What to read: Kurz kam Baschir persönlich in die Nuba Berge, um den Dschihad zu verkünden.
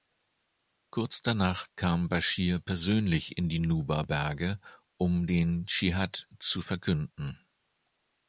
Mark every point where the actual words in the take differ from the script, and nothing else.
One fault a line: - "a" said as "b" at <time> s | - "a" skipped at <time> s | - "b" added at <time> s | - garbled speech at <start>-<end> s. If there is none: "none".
- "danach" added at 1.2 s